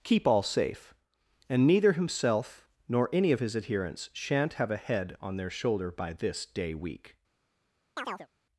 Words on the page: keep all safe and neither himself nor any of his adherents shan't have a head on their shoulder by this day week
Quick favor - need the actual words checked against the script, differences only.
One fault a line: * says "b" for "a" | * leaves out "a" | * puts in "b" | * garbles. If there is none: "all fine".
all fine